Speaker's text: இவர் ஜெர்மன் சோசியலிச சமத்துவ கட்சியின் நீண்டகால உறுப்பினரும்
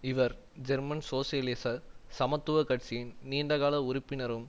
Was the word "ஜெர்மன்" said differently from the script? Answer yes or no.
no